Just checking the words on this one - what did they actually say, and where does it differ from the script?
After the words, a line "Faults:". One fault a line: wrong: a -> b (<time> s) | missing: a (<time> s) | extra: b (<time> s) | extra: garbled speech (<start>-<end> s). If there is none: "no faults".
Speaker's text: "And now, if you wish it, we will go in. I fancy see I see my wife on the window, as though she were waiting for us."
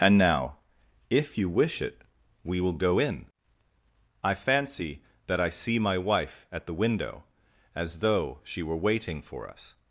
"And now, if you wish it, we will go in. I fancy that I see my wife at the window, as though she were waiting for us."
Faults:
wrong: see -> that (5.3 s)
wrong: on -> at (6.5 s)